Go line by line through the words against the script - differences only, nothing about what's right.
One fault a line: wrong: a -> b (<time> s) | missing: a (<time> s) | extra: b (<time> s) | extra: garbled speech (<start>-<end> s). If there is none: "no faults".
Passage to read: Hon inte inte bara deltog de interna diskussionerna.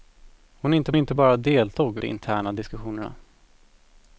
no faults